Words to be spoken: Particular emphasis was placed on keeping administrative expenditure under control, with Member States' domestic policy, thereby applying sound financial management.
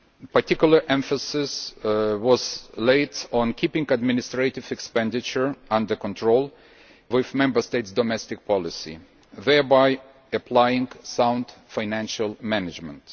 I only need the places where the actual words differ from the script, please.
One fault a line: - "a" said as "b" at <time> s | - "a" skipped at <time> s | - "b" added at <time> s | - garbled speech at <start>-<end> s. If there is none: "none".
none